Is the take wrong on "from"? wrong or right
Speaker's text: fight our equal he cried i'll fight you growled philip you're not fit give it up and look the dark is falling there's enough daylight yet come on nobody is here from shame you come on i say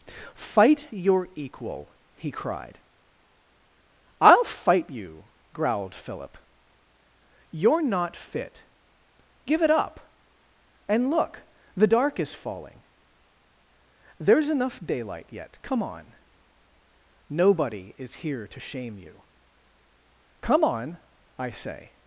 wrong